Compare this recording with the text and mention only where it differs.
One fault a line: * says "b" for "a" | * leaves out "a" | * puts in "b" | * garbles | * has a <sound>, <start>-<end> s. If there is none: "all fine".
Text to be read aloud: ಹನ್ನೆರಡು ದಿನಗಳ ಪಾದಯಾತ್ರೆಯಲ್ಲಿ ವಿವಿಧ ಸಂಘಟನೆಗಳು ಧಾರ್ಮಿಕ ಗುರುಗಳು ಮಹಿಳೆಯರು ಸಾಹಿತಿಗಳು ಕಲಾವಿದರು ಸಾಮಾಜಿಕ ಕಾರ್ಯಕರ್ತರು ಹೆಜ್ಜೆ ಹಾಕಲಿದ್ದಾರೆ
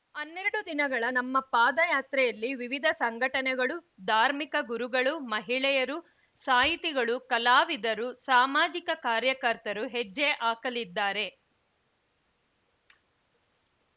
* puts in "ನಮ್ಮ"